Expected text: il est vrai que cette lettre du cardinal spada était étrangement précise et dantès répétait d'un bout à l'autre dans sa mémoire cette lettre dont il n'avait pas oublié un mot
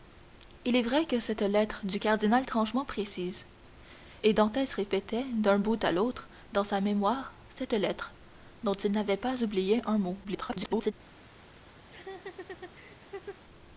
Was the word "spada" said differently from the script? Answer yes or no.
yes